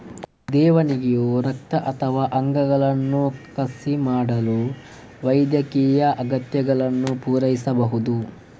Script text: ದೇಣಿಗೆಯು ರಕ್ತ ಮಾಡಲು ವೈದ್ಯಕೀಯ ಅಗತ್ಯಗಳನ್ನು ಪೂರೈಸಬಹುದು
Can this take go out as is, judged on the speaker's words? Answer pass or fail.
fail